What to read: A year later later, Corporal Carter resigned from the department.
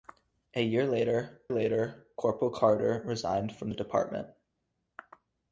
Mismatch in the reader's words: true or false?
false